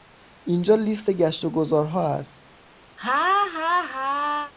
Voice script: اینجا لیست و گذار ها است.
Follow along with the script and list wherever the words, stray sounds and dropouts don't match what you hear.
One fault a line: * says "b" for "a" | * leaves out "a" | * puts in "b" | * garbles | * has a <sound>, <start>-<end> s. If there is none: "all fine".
* puts in "گشت"
* has a laugh, 3.0-4.5 s